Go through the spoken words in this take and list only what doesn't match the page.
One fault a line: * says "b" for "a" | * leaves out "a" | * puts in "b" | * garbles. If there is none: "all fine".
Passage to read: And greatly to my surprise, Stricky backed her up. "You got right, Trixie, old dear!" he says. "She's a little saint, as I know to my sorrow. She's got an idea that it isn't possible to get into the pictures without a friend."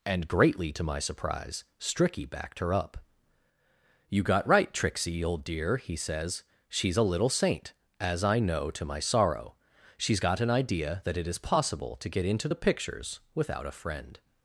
* says "is" for "isn't"